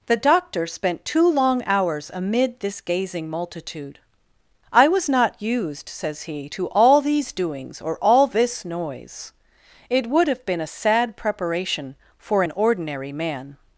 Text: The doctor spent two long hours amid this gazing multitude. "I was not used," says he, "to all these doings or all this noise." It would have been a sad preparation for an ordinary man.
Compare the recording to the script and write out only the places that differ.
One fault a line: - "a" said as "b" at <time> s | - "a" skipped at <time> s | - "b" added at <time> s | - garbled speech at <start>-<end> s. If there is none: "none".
none